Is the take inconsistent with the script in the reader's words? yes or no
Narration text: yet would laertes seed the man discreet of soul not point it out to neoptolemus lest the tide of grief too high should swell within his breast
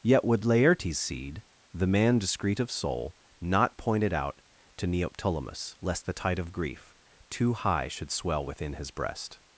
no